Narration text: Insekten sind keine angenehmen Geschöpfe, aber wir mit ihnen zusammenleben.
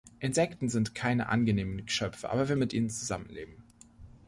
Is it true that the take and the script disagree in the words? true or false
false